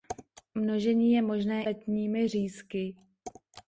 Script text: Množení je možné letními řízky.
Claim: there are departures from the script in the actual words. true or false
false